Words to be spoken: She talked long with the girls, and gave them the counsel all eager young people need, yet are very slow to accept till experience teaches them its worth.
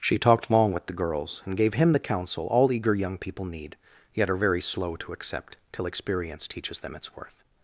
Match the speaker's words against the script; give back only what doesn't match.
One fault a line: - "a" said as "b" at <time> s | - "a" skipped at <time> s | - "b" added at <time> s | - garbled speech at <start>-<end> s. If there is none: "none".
- "them" said as "him" at 1.8 s